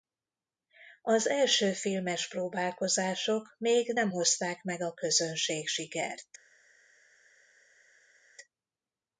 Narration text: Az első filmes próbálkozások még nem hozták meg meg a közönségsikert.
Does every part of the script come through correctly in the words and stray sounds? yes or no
no